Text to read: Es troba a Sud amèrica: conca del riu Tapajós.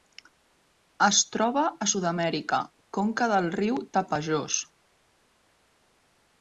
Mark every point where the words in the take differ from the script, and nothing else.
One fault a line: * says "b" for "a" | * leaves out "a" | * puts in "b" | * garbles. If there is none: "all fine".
all fine